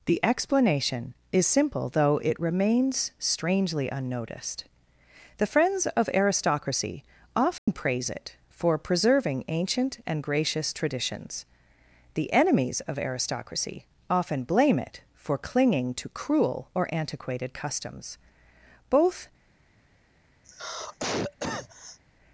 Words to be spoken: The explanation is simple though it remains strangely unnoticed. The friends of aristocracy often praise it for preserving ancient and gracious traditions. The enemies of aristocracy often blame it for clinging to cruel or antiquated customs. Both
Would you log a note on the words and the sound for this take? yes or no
yes